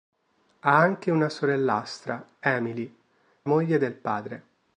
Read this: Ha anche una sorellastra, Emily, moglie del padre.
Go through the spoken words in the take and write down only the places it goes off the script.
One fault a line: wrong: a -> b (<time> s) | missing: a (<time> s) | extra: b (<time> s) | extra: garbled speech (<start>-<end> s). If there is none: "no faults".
no faults